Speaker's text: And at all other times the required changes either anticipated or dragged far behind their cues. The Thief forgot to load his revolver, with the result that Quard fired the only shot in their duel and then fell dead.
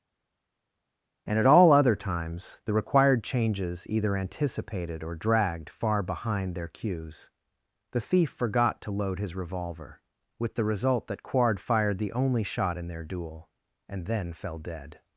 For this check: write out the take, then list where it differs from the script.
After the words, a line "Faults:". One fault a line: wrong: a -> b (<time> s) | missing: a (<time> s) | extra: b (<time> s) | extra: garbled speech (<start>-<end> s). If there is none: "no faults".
And at all other times the required changes either anticipated or dragged far behind their cues. The Thief forgot to load his revolver, with the result that Quard fired the only shot in their duel and then fell dead.
Faults:
no faults